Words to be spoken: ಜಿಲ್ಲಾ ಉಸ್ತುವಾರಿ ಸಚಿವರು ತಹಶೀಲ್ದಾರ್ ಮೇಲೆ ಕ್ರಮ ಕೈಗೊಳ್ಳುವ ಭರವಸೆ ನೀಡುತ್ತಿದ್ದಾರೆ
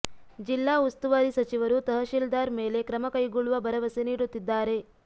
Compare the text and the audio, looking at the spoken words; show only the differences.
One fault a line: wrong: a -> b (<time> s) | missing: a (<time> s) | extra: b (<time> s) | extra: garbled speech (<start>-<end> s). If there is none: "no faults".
no faults